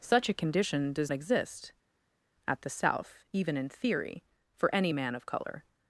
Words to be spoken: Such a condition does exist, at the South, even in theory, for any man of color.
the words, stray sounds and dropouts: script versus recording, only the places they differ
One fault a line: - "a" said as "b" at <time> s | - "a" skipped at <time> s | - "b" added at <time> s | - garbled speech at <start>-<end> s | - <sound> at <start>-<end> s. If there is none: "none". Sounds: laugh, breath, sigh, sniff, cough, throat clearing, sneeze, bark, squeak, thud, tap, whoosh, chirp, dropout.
none